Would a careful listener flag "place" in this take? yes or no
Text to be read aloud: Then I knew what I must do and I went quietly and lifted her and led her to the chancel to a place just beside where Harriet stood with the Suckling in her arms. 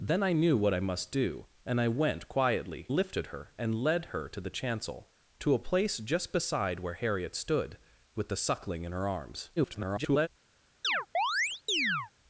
no